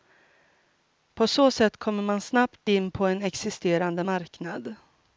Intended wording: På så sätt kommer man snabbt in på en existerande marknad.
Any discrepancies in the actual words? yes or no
no